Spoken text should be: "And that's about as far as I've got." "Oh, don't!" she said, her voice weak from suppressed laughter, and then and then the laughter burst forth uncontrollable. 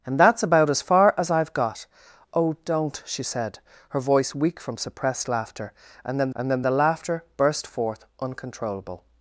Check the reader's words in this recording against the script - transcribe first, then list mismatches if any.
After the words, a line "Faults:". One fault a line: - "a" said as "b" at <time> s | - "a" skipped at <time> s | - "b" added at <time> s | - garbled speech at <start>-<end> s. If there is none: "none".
"And that's about as far as I've got." "Oh, don't!" she said, her voice weak from suppressed laughter, and then and then the laughter burst forth uncontrollable.
Faults:
none